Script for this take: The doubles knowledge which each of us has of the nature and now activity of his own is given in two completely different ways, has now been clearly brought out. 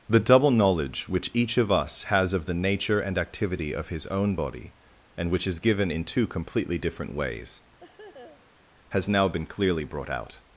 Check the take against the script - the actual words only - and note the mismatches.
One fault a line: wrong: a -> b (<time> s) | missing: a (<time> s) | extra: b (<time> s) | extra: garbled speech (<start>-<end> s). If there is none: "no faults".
wrong: doubles -> double (0.2 s)
missing: now (3.2 s)
extra: body and which (4.3 s)